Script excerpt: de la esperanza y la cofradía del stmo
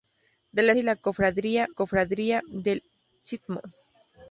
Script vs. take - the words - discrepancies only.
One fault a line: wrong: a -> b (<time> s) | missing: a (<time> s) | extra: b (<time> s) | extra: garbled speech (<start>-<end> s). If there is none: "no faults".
missing: esperanza (0.7 s)
extra: cofradía (1.7 s)